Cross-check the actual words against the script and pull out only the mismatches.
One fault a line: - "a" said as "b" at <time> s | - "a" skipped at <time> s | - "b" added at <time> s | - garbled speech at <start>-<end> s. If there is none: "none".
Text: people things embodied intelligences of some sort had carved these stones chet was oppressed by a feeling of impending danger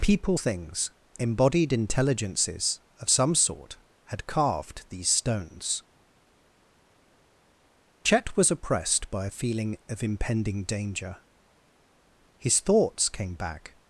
- "his thoughts came back" added at 12.4 s